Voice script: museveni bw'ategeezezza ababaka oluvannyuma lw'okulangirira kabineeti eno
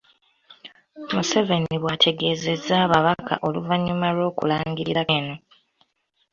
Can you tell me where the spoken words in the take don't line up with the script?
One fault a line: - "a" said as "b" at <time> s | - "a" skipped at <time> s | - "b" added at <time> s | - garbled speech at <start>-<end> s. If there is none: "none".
- "kabineeti" skipped at 5.0 s